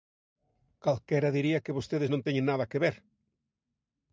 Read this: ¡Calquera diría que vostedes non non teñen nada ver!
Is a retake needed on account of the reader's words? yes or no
yes